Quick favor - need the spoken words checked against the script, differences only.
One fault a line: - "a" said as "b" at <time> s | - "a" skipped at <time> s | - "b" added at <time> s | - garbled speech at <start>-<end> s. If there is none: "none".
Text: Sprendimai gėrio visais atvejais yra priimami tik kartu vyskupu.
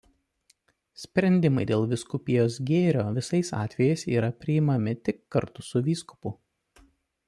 - "dėl vyskupijos" added at 1.7 s
- "su" added at 5.7 s